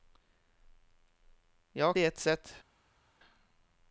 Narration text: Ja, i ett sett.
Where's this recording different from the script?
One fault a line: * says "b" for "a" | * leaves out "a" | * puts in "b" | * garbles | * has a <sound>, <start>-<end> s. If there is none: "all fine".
all fine